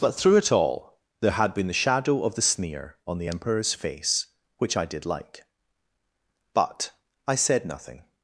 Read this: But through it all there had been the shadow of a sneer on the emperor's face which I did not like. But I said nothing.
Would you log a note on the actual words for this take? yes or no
yes